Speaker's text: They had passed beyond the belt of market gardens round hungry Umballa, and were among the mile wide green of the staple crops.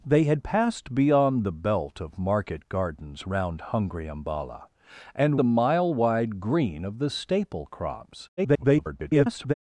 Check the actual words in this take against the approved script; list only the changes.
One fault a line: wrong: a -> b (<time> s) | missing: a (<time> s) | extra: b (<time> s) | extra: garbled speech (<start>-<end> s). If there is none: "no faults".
missing: were among (5.4 s)
extra: garbled speech (8.4-9.5 s)